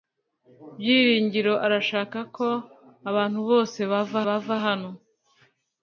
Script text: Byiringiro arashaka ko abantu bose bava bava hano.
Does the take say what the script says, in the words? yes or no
yes